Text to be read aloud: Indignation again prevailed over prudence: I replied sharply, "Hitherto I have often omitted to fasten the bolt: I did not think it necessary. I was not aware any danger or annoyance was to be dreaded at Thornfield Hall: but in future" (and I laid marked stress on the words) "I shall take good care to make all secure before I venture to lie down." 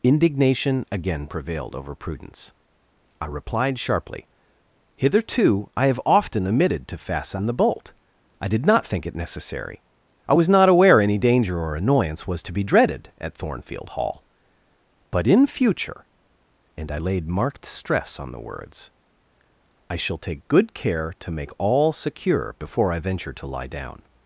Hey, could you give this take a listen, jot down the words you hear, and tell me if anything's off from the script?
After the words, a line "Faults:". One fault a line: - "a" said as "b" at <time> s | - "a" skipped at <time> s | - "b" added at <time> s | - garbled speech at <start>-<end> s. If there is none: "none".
Indignation again prevailed over prudence: I replied sharply, "Hitherto I have often omitted to fasten the bolt: I did not think it necessary. I was not aware any danger or annoyance was to be dreaded at Thornfield Hall: but in future" (and I laid marked stress on the words) "I shall take good care to make all secure before I venture to lie down."
Faults:
none